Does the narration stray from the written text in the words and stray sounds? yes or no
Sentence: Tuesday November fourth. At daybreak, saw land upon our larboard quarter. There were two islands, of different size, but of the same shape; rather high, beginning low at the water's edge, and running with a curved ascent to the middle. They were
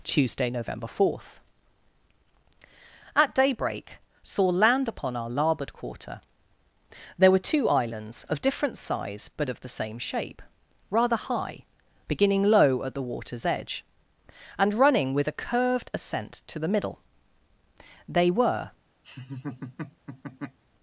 yes